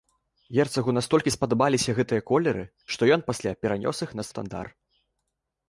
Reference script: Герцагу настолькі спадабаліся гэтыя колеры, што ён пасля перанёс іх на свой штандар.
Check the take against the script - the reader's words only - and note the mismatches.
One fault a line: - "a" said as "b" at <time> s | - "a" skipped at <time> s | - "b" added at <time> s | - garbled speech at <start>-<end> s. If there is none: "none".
- "свой" skipped at 4.3 s